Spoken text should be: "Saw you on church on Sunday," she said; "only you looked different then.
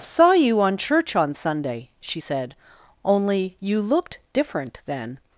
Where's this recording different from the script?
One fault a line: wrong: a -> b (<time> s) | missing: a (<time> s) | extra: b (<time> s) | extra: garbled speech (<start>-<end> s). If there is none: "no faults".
no faults